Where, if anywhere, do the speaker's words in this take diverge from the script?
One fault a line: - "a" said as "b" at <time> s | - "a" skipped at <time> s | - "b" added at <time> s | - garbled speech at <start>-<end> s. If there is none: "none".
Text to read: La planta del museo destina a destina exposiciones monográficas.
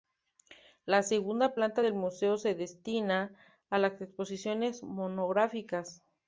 - "segunda" added at 1.0 s
- "se" added at 2.4 s
- "destina" said as "las" at 3.8 s